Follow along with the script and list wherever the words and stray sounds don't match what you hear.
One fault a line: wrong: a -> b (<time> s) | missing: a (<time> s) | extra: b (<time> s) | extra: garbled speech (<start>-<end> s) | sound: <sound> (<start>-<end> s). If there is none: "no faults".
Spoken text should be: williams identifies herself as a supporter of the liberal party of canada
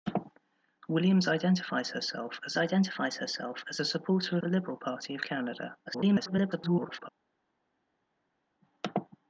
extra: identifies herself as (2.6 s)
missing: of (4.4 s)
extra: garbled speech (5.9-7.1 s)